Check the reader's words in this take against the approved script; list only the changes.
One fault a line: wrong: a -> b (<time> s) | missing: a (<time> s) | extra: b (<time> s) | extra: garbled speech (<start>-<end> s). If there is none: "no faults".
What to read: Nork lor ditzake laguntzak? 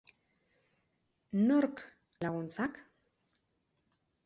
missing: lor ditzake (1.8 s)